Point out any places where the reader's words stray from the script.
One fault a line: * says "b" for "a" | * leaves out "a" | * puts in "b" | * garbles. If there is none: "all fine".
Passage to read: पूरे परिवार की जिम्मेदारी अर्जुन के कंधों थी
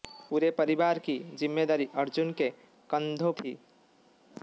all fine